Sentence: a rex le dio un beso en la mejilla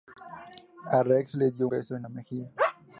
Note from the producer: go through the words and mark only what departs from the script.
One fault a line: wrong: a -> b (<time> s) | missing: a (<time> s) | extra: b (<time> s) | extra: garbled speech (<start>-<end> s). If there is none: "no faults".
missing: un (1.7 s)